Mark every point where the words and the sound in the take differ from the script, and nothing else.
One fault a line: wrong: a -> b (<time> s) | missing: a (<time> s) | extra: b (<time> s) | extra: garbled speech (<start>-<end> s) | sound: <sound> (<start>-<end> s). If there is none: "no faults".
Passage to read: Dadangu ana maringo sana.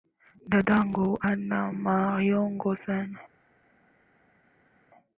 no faults